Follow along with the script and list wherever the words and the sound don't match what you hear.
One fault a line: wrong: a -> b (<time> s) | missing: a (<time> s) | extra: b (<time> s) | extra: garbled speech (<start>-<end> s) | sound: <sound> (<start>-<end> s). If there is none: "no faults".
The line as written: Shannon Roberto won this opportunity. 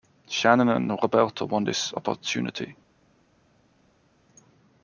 extra: and (0.7 s)